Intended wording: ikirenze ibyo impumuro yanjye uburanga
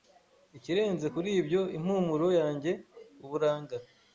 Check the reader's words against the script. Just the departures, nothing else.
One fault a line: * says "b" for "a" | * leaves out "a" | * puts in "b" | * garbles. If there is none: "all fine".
* puts in "kuri"